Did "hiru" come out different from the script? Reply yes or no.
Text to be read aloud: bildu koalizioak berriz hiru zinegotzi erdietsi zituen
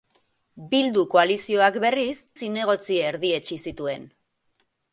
yes